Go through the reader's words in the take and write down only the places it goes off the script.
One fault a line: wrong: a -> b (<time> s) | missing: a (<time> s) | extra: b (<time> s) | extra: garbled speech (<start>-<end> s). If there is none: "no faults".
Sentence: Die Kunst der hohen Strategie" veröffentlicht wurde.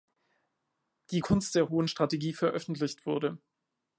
no faults